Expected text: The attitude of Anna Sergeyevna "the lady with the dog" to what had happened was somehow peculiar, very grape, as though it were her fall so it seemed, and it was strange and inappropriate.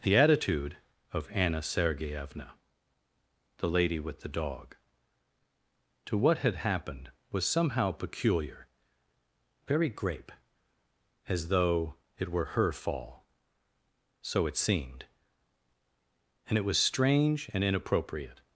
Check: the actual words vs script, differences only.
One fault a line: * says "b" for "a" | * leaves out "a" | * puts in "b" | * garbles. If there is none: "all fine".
all fine